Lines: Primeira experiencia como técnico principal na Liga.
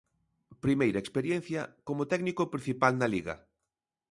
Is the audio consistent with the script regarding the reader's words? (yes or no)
yes